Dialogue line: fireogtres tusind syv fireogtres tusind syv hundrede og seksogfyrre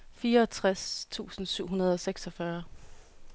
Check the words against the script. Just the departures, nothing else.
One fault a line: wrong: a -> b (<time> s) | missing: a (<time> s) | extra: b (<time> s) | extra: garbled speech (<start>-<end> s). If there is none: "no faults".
missing: fireogtres tusind syv (1.7 s)